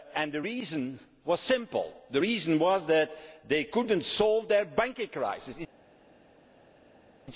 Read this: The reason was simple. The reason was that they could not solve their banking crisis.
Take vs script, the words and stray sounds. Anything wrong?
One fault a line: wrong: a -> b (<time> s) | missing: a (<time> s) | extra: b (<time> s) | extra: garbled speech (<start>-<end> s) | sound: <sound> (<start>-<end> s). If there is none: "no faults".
no faults